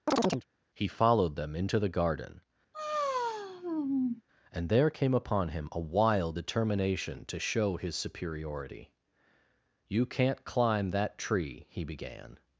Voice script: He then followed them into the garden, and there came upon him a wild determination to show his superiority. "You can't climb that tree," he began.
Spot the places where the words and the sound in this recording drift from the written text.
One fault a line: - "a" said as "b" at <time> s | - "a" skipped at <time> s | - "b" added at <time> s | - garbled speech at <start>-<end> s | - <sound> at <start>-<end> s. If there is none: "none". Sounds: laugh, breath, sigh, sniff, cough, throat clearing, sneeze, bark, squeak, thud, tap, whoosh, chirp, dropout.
- chirp at 0.1-0.5 s
- "then" skipped at 0.9 s
- sigh at 2.7-4.2 s